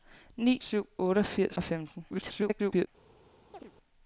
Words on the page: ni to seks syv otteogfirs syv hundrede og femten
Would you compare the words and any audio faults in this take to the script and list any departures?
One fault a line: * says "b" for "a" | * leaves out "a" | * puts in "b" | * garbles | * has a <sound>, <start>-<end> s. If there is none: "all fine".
* leaves out "to seks"
* leaves out "syv hundrede"
* garbles
* has a chirp, 3.5-3.7 s